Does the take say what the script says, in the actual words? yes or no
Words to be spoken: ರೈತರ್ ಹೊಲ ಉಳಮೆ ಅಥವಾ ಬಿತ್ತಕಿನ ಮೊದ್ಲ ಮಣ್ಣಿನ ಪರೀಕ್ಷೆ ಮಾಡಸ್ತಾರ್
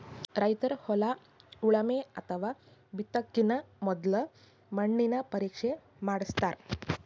yes